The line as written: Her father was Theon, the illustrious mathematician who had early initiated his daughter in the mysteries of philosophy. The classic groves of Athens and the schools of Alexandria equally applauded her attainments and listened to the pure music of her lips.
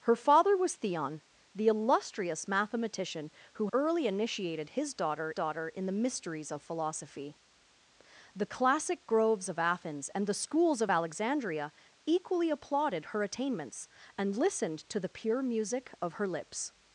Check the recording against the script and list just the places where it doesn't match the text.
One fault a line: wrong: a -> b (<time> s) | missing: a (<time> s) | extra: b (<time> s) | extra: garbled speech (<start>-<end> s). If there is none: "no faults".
missing: had (3.7 s)
extra: daughter (5.3 s)